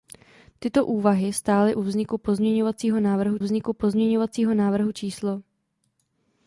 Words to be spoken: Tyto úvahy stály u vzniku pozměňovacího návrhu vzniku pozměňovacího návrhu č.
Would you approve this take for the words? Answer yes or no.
yes